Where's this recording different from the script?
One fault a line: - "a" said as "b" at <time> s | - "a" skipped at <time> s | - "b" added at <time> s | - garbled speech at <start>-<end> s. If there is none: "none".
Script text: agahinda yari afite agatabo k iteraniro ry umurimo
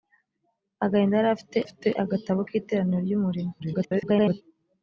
- "afite" added at 1.6 s
- garbled speech at 3.6-4.4 s